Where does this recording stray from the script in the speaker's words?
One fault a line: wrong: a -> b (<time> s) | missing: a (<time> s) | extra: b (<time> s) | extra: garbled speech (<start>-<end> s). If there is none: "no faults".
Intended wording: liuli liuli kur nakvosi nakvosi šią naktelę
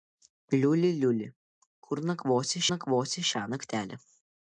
no faults